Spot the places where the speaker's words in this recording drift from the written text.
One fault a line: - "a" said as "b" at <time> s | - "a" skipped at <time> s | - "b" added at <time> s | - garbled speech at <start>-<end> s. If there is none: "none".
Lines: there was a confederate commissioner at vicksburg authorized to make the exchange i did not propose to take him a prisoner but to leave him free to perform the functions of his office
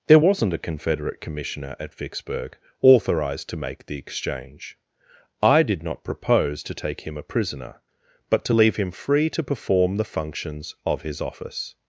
- "was" said as "wasn't" at 0.2 s